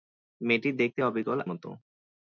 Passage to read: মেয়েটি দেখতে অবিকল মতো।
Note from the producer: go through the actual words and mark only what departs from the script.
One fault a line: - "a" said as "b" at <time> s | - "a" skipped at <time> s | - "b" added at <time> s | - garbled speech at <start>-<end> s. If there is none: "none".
none